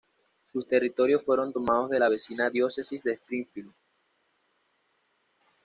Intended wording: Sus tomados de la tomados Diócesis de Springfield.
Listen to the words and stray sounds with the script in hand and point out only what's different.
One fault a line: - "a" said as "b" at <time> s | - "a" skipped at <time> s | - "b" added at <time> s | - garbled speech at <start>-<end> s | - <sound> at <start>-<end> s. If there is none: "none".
- "territorios fueron" added at 0.7 s
- "tomados" said as "vecina" at 2.1 s